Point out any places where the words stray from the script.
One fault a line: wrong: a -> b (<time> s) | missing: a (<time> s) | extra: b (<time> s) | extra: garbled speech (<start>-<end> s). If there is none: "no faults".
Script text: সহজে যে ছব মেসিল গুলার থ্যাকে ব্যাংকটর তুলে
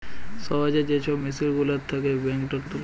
no faults